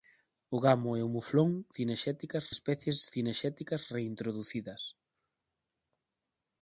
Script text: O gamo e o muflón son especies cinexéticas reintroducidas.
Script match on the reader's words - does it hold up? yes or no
no